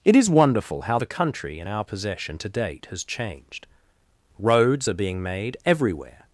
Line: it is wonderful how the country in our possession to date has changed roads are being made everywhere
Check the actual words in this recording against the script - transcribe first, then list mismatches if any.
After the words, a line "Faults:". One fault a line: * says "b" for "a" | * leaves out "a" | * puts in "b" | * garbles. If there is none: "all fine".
it is wonderful how the country in our possession to date has changed roads are being made everywhere
Faults:
all fine